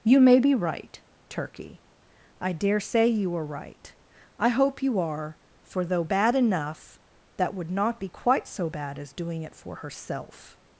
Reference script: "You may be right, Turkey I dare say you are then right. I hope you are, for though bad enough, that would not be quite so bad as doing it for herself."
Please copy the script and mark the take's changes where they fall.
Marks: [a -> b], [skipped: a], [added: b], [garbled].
"You may be right, Turkey I dare say you are [skipped: then] right. I hope you are, for though bad enough, that would not be quite so bad as doing it for herself."